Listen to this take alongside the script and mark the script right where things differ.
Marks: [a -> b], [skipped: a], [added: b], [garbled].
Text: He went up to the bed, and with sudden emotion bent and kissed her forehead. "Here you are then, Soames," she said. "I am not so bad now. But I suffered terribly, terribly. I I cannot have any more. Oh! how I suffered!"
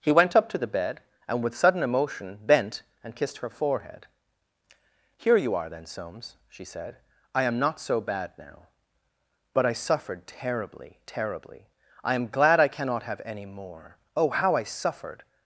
He went up to the bed, and with sudden emotion bent and kissed her forehead. "Here you are then, Soames," she said. "I am not so bad now. But I suffered terribly, terribly. I [added: am glad] I cannot have any more. Oh! how I suffered!"